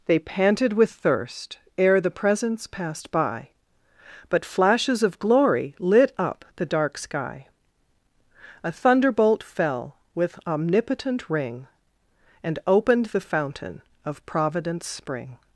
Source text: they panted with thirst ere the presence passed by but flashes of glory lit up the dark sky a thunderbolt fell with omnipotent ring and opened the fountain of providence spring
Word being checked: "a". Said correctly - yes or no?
yes